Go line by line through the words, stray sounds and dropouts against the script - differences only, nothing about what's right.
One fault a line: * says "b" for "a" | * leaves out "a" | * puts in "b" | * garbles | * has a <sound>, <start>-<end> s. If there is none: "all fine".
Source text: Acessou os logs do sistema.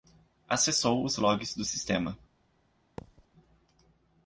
* has a thud, 3.0-3.3 s